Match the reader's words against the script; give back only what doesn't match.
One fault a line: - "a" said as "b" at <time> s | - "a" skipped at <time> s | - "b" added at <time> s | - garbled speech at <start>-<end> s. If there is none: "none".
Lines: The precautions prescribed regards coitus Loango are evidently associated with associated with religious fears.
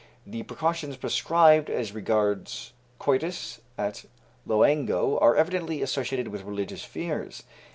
- "as" added at 1.7 s
- "at" added at 3.8 s
- "associated with" skipped at 6.4 s